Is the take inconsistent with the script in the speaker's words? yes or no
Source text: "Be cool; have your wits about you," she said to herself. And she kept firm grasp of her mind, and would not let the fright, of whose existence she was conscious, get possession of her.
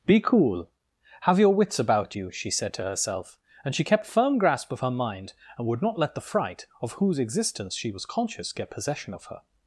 no